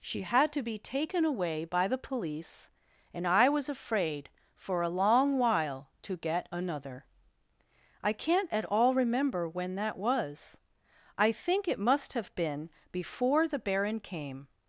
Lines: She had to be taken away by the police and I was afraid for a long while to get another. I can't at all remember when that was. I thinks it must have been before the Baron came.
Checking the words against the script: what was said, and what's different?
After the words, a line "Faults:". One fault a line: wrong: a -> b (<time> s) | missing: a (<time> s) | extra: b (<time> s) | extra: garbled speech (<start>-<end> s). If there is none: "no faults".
She had to be taken away by the police and I was afraid for a long while to get another. I can't at all remember when that was. I think it must have been before the Baron came.
Faults:
wrong: thinks -> think (11.3 s)